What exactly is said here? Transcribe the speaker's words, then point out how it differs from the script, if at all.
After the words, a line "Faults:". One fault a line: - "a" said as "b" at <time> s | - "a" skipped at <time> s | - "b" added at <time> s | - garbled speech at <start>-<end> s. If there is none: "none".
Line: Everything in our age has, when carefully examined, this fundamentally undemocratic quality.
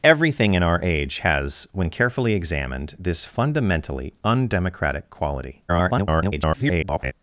Everything in our age has, when carefully examined, this fundamentally undemocratic quality. [garbled]
Faults:
- garbled speech at 5.7-7.1 s